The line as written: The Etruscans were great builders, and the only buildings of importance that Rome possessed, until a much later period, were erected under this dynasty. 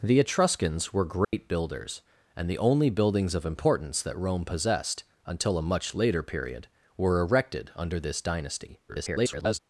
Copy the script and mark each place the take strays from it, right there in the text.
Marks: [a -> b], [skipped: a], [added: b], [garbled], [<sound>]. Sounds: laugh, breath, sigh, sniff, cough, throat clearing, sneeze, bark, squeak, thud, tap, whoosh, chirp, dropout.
The Etruscans were great [dropout] builders, and the only buildings of importance that Rome possessed, until a much later period, were erected under this dynasty. [garbled]